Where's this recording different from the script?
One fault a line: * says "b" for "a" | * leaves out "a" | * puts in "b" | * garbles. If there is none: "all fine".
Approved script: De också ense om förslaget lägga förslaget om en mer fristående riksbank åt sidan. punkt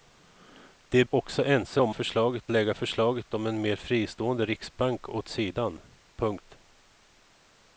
all fine